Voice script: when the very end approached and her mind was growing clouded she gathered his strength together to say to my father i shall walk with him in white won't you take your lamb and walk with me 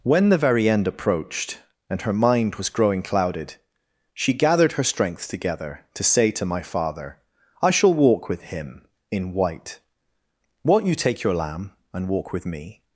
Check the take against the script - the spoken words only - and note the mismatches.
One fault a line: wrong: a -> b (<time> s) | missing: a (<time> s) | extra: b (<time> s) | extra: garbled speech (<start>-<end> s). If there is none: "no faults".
wrong: his -> her (4.7 s)